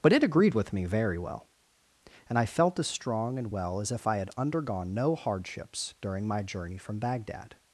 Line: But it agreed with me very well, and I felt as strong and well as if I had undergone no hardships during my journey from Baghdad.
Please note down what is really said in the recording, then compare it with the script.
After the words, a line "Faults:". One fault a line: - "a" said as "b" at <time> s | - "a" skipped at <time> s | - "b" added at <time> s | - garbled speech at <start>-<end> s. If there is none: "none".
But it agreed with me very well, and I felt as strong and well as if I had undergone no hardships during my journey from Baghdad.
Faults:
none